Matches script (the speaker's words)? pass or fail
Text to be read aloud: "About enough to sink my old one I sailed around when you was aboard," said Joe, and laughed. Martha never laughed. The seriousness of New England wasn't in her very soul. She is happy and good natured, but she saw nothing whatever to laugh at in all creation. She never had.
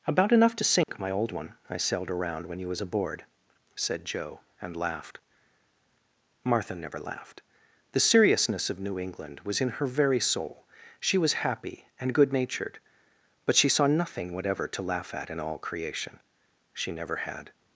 fail